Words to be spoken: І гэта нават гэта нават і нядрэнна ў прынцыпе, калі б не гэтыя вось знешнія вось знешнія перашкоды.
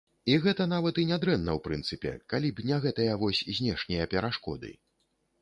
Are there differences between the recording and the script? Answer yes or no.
yes